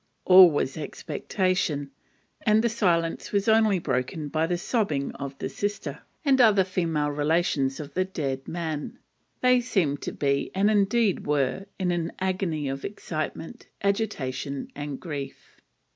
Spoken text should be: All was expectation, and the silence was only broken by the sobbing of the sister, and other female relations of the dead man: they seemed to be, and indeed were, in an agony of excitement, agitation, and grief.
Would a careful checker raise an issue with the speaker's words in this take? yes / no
no